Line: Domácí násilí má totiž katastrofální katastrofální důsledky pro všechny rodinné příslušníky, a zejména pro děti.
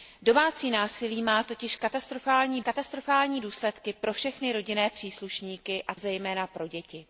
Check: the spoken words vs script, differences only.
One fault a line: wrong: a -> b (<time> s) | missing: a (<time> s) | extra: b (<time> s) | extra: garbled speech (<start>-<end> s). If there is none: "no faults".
no faults